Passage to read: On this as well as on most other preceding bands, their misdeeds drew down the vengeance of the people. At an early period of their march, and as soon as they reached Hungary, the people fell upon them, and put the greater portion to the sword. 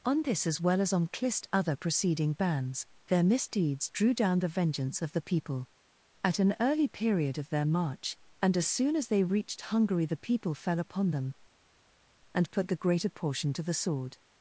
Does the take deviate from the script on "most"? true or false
true